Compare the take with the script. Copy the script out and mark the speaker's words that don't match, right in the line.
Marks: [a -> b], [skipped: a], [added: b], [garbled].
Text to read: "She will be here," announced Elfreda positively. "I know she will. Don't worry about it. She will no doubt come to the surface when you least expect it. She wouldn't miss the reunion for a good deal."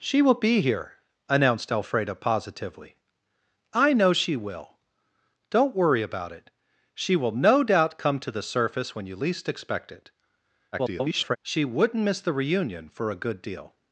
"She will be here," announced Elfreda positively. "I know she will. Don't worry about it. She will no doubt come to the surface when you least expect it. [garbled] She wouldn't miss the reunion for a good deal."